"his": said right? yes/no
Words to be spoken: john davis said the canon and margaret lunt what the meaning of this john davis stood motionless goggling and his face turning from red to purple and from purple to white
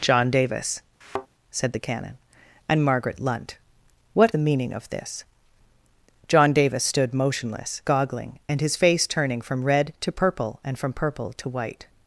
yes